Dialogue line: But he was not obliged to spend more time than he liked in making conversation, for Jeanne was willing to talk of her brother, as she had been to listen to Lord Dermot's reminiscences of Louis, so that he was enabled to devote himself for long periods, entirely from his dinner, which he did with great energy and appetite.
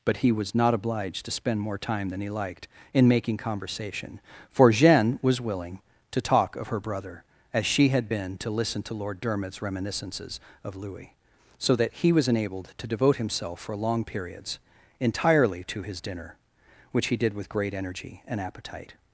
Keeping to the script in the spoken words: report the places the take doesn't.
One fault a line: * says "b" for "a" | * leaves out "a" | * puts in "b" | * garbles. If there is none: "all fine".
* says "to" for "from"